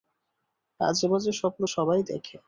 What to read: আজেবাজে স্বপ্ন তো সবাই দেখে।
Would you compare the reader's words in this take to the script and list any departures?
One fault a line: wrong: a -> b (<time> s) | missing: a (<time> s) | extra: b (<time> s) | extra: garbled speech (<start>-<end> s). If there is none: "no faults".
missing: তো (1.6 s)